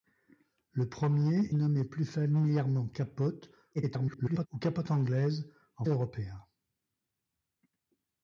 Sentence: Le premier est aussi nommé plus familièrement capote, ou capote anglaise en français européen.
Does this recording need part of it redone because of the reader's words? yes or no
yes